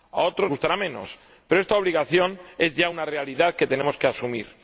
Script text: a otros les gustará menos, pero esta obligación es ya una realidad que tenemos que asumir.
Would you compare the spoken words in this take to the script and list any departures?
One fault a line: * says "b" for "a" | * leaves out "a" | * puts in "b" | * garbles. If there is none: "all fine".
* leaves out "les"